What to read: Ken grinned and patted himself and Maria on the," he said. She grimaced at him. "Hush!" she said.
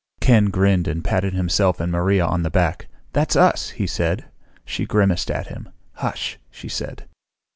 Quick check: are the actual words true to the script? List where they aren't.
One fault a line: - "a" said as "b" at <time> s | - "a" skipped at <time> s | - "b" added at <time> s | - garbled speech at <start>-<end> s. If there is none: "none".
- "back That's us" added at 2.5 s